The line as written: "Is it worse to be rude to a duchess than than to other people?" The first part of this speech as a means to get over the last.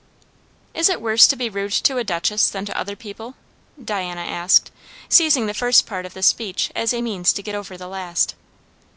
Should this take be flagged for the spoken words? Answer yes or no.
yes